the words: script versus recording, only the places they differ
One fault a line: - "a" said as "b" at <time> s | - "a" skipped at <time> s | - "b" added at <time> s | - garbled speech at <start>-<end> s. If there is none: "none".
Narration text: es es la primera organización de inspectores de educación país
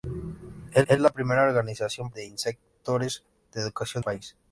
none